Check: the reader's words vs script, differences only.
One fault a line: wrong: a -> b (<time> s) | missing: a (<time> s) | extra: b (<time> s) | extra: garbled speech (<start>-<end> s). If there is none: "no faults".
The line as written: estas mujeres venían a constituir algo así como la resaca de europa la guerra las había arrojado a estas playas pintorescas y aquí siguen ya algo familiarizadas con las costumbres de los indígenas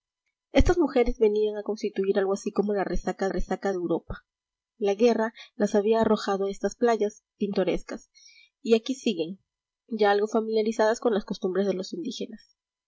extra: resaca (3.3 s)